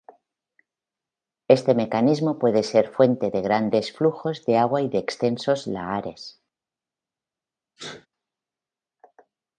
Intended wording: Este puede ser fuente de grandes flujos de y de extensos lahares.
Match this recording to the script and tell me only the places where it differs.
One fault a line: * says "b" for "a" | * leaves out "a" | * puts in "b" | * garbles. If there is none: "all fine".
* puts in "mecanismo"
* puts in "agua"